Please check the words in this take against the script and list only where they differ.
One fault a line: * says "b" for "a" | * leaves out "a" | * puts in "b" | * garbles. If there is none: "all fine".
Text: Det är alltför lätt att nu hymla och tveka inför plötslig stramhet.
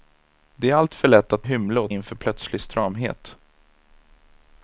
* leaves out "nu"
* leaves out "tveka"